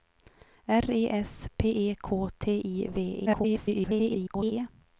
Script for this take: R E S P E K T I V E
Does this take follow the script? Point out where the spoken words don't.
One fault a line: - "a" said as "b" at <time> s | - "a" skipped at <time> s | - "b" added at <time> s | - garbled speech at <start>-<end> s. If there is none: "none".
- garbled speech at 3.3-4.5 s